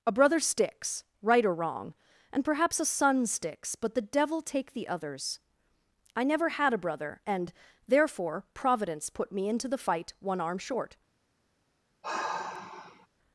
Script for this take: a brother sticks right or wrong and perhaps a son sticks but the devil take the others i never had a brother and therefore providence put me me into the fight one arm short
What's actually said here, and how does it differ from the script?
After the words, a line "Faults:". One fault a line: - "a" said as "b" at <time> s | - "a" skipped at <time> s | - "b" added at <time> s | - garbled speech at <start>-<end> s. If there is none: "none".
a brother sticks right or wrong and perhaps a son sticks but the devil take the others i never had a brother and therefore providence put me into the fight one arm short
Faults:
- "me" skipped at 9.5 s